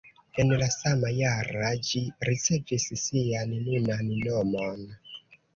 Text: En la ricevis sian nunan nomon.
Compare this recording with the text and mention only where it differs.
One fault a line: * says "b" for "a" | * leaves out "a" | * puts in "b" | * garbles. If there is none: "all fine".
* puts in "sama jara ĝi"